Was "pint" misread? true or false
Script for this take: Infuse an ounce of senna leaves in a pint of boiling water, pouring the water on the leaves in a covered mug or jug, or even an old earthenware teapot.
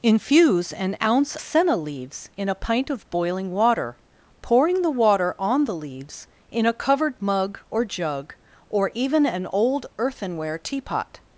false